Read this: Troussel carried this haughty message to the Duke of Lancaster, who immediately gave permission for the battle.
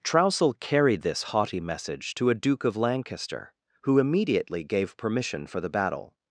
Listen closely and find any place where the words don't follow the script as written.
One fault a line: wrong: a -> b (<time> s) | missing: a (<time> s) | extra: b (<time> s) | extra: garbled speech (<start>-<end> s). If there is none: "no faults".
wrong: the -> a (2.3 s)